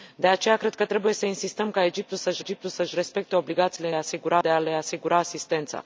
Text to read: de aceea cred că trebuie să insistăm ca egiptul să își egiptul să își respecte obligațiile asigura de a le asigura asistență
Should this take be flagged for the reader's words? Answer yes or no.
no